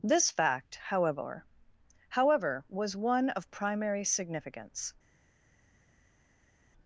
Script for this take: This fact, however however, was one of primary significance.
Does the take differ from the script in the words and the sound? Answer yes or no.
no